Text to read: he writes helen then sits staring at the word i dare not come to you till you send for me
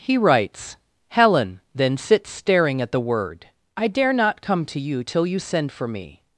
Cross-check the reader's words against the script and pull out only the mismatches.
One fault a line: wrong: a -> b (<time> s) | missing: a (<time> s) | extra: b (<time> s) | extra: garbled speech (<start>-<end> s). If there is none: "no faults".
no faults